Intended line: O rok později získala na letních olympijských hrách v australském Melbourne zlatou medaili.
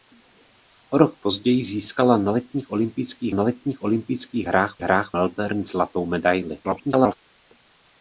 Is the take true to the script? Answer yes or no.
no